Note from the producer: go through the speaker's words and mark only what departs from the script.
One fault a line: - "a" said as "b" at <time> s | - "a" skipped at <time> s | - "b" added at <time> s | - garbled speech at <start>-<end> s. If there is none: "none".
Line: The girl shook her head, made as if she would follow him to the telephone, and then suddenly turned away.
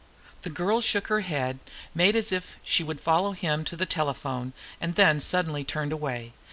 none